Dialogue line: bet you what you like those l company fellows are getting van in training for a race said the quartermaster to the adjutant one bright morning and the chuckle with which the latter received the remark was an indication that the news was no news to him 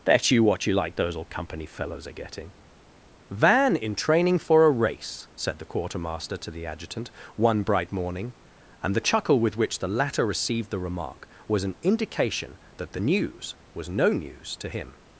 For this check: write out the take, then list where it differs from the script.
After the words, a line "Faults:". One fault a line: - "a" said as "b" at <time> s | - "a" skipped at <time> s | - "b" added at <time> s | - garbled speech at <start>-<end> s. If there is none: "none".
bet you what you like those old company fellows are getting van in training for a race said the quartermaster to the adjutant one bright morning and the chuckle with which the latter received the remark was an indication that the news was no news to him
Faults:
- "l" said as "old" at 1.1 s